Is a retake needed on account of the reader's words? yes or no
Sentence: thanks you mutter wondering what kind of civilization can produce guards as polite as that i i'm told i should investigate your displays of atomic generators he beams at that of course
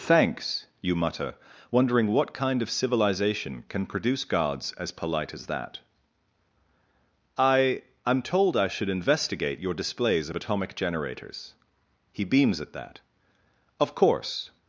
no